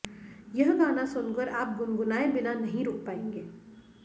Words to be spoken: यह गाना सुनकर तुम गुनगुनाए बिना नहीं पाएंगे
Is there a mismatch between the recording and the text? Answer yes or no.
yes